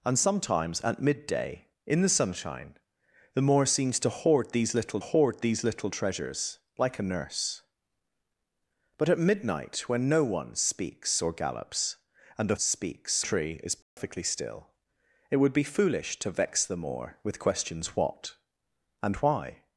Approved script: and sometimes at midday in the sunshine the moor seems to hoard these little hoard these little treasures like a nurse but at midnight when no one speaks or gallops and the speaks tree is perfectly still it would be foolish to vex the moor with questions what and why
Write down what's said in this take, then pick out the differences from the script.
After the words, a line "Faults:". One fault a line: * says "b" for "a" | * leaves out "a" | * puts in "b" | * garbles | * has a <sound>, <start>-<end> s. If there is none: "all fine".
and sometimes at midday in the sunshine the moor seems to hoard these little hoard these little treasures like a nurse but at midnight when no one speaks or gallops and the speaks tree is perfectly still it would be foolish to vex the moor with questions what and why
Faults:
* has a dropout, 13.8-14.0 s